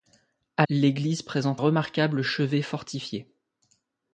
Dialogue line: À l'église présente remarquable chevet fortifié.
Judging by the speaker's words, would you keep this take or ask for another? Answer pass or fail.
pass